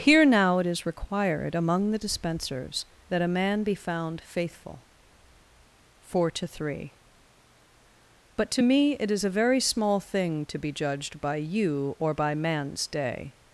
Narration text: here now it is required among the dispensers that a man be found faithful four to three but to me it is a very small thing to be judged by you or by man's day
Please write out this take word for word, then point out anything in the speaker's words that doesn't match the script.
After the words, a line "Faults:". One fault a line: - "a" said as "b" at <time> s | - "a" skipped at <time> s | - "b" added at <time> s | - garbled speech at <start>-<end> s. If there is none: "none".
here now it is required among the dispensers that a man be found faithful four to three but to me it is a very small thing to be judged by you or by man's day
Faults:
none